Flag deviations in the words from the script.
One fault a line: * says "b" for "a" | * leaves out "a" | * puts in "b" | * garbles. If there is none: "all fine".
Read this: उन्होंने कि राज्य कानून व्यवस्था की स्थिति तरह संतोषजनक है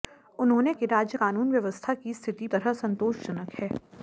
all fine